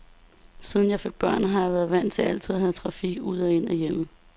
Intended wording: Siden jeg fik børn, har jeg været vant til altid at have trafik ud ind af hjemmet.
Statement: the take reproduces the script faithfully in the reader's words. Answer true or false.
false